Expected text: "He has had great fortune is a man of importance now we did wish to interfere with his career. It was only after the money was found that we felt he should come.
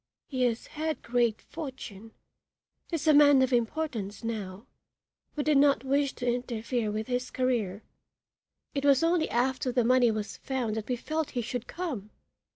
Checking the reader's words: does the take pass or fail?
fail